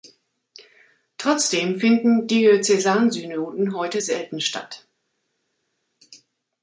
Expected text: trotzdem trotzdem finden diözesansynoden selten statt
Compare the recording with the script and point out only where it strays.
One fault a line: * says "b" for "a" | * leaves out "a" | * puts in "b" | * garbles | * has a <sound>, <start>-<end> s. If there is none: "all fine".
* leaves out "trotzdem"
* puts in "heute"